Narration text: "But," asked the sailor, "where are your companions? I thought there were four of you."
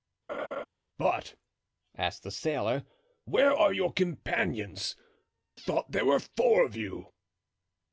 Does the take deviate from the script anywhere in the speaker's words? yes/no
yes